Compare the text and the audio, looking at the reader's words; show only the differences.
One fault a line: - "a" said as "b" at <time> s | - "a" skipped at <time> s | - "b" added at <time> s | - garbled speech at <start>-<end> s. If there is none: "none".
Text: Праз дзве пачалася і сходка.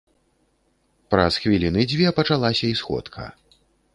- "хвіліны" added at 1.4 s